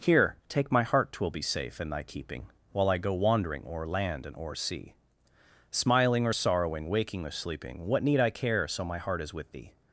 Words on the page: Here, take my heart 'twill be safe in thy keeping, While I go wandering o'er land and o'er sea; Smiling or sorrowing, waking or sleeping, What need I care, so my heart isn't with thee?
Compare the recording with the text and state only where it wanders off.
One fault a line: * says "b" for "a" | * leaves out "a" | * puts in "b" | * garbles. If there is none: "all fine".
* says "is" for "isn't"